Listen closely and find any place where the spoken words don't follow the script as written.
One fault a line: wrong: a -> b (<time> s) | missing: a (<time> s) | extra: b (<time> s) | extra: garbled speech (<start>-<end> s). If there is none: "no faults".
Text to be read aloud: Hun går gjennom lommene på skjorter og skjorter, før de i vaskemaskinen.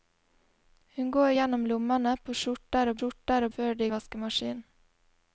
no faults